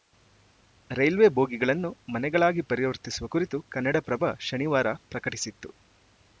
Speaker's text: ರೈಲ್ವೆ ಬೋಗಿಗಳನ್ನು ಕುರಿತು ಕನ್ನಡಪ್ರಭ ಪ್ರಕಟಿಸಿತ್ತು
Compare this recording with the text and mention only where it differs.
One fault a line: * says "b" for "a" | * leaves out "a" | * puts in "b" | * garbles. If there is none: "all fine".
* puts in "ಮನೆಗಳಾಗಿ ಪರಿವರ್ತಿಸುವ"
* puts in "ಶನಿವಾರ"